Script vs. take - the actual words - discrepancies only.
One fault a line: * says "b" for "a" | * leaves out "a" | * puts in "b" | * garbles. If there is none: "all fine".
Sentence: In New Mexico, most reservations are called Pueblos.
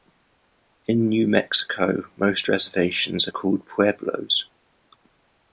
all fine